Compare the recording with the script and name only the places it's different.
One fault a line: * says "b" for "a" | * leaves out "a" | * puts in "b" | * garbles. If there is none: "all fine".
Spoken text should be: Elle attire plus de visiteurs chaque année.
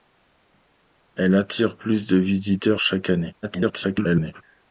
* garbles